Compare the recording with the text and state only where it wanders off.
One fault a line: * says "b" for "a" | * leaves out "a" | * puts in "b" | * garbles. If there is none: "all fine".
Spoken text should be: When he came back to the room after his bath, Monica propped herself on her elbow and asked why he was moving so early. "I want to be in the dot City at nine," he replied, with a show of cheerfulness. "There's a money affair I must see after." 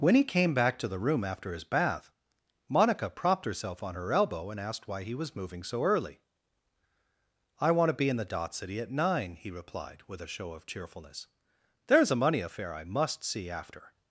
all fine